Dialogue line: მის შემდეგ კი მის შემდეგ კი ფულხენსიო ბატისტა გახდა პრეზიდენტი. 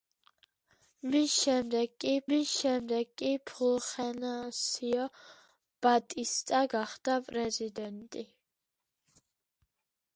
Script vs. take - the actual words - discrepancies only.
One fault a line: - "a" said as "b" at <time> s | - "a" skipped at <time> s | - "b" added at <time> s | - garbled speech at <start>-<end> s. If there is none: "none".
none